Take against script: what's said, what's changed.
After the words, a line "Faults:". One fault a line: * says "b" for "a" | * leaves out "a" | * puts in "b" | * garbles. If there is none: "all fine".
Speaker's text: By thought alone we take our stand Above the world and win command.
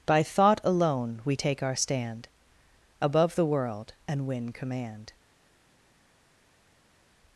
By thought alone we take our stand Above the world and win command.
Faults:
all fine